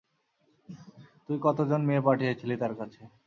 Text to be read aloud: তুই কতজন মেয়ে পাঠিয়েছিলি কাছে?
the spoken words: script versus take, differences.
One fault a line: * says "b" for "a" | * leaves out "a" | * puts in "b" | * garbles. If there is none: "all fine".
* puts in "তার"